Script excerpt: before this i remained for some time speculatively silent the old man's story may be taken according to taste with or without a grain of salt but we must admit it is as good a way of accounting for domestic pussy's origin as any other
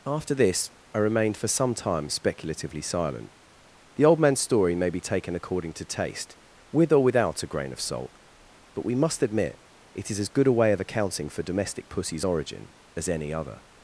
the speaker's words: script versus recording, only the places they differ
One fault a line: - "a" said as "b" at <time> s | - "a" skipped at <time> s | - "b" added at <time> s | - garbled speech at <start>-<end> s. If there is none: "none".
- "before" said as "after" at 0.1 s